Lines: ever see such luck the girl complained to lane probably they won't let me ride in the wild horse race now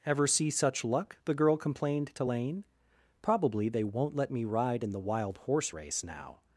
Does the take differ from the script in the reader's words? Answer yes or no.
no